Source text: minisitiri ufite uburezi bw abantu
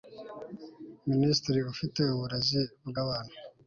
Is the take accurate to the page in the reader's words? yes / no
yes